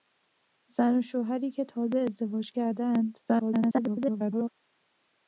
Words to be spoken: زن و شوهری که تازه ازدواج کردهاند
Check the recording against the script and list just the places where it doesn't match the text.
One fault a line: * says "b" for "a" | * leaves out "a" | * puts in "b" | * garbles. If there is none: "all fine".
* garbles